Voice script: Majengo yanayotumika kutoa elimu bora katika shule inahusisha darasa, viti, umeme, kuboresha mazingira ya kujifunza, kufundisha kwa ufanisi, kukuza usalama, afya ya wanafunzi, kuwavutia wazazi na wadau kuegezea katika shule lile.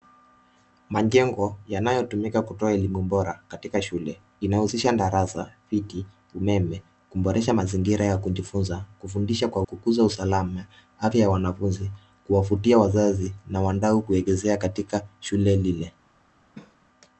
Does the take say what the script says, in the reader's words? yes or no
no